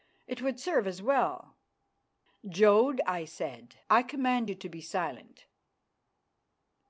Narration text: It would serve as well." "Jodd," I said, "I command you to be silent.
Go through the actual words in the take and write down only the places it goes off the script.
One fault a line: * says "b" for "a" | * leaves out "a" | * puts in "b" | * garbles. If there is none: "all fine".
all fine